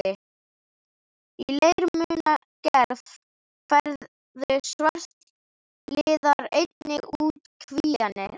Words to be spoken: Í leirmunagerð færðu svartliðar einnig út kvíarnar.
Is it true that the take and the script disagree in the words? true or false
false